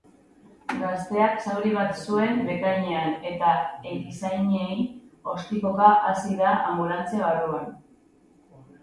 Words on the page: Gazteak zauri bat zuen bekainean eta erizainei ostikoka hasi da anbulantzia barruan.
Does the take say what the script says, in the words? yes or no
yes